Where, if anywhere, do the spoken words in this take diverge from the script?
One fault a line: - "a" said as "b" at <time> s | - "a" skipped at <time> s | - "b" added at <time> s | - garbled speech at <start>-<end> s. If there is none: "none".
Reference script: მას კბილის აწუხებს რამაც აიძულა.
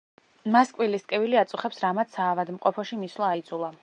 - "ტკივილი" added at 1.1 s
- "საავადმყოფოში მისვლა" added at 2.2 s